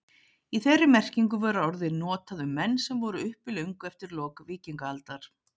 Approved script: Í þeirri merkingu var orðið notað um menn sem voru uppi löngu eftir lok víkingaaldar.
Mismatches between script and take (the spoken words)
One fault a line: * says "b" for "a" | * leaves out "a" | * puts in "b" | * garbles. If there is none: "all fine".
all fine